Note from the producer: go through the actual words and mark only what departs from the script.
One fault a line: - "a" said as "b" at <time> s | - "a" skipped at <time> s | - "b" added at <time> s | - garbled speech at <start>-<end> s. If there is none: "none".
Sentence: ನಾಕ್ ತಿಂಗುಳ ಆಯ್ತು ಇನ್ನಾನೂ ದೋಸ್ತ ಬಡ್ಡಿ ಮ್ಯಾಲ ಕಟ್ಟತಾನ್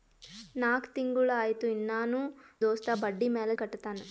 none